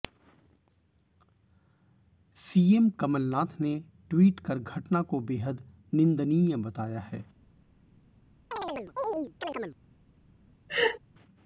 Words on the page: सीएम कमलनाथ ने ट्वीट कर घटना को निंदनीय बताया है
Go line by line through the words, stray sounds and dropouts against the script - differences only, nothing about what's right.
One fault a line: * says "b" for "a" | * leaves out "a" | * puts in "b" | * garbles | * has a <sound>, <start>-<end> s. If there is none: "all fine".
* puts in "बेहद"
* has a chirp, 8.5-9.8 s
* has a laugh, 10.7-11.0 s